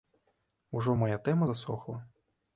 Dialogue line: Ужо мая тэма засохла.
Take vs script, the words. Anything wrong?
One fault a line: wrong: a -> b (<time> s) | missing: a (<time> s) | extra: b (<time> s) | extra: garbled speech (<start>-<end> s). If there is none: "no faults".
no faults